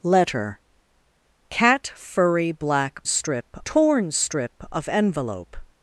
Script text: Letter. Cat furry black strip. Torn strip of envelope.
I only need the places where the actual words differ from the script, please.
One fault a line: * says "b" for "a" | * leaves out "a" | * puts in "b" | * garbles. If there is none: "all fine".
all fine